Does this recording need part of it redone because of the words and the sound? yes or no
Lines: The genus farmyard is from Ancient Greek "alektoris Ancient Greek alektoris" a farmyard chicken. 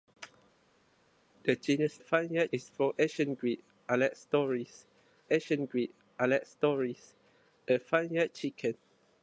no